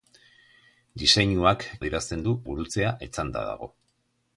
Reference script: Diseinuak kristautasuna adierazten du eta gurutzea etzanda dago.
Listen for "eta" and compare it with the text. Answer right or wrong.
wrong